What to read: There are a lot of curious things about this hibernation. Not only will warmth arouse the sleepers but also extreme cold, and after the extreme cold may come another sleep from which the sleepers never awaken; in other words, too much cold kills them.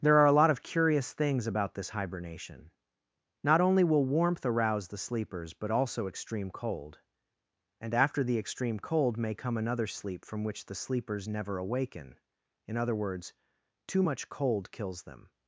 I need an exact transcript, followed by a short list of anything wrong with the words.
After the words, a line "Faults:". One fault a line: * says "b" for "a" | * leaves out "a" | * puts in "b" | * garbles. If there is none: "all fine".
There are a lot of curious things about this hibernation. Not only will warmth arouse the sleepers but also extreme cold, and after the extreme cold may come another sleep from which the sleepers never awaken; in other words, too much cold kills them.
Faults:
all fine